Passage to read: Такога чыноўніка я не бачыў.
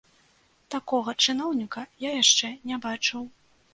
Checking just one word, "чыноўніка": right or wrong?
right